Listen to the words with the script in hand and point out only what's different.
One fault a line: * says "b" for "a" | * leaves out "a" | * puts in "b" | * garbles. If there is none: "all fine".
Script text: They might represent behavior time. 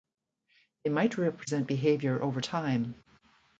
* puts in "over"